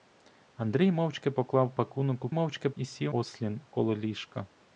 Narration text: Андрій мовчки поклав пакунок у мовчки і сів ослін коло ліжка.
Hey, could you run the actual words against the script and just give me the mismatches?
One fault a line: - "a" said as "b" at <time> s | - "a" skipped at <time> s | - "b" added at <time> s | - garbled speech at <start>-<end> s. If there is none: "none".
none